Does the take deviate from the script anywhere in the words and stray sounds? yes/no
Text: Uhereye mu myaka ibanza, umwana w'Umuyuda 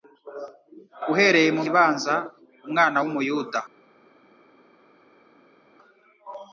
yes